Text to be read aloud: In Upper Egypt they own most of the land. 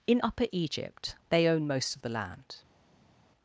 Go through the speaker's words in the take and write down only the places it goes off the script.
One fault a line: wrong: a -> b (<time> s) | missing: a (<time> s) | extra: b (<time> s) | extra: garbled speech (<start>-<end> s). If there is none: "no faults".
no faults